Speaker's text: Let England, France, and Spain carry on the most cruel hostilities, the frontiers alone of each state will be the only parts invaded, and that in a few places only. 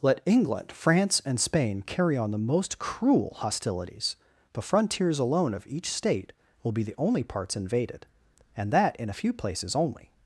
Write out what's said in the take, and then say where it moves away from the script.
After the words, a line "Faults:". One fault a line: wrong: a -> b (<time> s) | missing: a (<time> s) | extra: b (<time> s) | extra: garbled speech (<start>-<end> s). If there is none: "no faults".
Let England, France, and Spain carry on the most cruel hostilities, the frontiers alone of each state will be the only parts invaded, and that in a few places only.
Faults:
no faults